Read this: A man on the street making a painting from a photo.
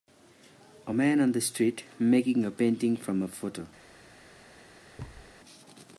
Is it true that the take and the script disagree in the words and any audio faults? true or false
true